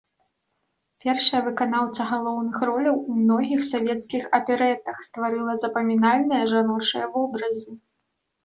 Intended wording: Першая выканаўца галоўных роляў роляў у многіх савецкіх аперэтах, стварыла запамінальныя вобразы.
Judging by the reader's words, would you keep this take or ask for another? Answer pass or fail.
fail